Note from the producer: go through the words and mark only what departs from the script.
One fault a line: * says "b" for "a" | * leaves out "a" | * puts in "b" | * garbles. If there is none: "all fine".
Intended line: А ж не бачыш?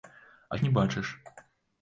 all fine